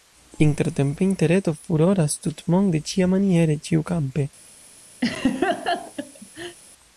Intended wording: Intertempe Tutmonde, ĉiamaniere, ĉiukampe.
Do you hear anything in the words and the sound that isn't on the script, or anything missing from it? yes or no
yes